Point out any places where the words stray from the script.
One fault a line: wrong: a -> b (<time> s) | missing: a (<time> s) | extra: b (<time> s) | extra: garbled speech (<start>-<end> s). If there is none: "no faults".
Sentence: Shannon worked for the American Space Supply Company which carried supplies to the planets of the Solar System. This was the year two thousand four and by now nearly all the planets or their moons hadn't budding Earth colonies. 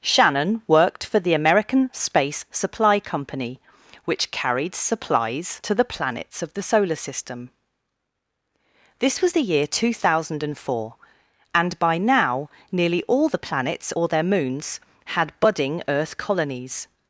wrong: hadn't -> had (15.1 s)